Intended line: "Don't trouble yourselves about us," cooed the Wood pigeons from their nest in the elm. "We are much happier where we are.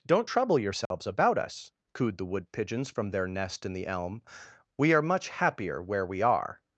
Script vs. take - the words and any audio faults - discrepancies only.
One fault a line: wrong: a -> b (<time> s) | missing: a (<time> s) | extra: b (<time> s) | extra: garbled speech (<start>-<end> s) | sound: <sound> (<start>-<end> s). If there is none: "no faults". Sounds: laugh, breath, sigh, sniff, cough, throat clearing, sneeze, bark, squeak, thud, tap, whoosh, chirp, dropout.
sound: dropout (0.9-0.9 s)